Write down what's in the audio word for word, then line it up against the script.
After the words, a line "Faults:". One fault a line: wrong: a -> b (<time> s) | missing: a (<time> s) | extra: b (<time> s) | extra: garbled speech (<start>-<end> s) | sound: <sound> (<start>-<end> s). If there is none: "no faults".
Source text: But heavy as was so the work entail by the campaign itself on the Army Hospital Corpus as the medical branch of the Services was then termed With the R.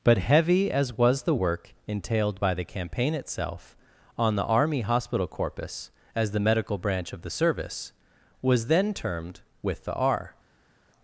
But heavy as was the work entailed by the campaign itself on the Army Hospital Corpus as the medical branch of the Service was then termed With the R.
Faults:
missing: so (1.2 s)
wrong: entail -> entailed (1.9 s)
wrong: Services -> Service (7.3 s)